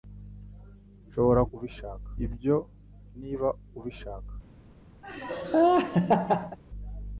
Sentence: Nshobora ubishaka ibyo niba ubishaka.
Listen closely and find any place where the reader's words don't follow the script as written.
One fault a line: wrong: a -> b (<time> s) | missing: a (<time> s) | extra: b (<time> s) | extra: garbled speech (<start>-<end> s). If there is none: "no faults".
no faults